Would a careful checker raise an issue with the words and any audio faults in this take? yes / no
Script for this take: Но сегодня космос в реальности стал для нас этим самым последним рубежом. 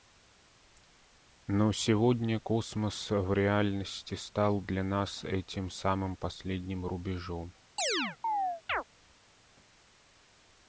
yes